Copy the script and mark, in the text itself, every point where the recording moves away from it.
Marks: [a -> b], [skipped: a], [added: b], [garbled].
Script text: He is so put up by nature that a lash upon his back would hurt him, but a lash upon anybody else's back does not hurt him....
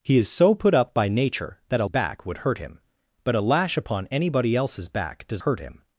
He is so put up by nature that a [skipped: lash upon his] back would hurt him, but a lash upon anybody else's back does [skipped: not] hurt him....